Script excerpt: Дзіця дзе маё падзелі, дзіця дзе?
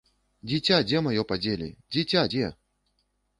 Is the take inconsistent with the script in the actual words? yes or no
no